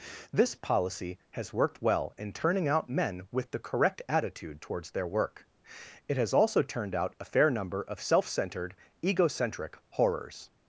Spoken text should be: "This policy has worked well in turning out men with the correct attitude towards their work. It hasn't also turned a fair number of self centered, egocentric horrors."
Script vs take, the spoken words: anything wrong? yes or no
yes